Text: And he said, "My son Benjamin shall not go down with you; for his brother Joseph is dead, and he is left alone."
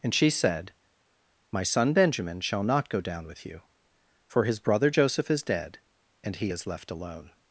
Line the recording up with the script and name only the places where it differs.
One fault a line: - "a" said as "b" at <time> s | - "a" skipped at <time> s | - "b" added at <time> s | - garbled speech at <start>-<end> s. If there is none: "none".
- "he" said as "she" at 0.1 s